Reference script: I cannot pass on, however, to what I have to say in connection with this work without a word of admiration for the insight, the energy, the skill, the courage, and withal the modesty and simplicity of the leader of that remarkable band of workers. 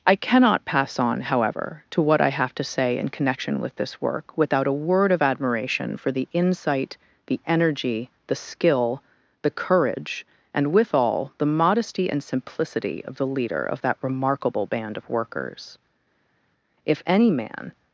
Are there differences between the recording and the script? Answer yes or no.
yes